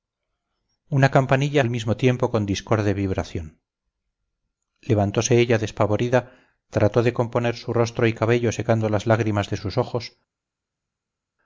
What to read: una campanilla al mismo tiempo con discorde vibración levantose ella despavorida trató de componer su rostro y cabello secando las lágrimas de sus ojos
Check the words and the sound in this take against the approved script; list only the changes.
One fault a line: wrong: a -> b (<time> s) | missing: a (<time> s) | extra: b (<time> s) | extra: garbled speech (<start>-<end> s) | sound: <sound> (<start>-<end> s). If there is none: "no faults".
no faults